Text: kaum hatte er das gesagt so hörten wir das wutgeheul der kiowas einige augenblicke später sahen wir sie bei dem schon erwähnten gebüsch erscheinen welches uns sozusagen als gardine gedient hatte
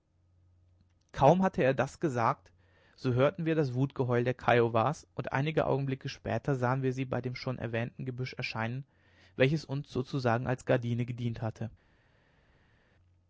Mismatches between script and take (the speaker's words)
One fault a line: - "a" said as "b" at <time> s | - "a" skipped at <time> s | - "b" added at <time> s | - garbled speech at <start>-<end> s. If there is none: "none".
- "und" added at 5.2 s